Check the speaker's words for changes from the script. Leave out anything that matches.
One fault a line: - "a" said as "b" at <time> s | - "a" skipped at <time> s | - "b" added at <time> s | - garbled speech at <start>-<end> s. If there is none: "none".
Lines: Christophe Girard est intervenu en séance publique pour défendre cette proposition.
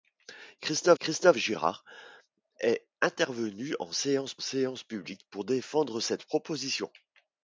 - "christophe" added at 1.0 s
- "séance" added at 4.4 s